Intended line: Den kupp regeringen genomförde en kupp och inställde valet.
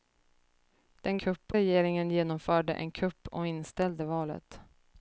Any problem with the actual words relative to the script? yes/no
no